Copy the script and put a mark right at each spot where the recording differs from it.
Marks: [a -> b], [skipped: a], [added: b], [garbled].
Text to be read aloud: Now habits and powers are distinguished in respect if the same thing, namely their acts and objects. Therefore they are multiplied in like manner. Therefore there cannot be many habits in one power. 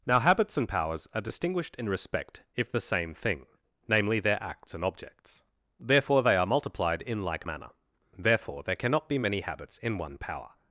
Now habits and powers are distinguished in respect if the same thing, namely their acts and objects. Therefore they are multiplied in like manner. Therefore there cannot be many habits in one power.